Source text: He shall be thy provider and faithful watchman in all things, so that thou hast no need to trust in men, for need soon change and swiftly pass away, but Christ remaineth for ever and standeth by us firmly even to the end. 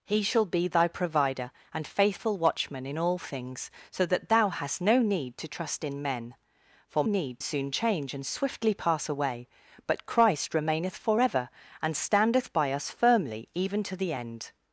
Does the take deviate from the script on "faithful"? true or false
false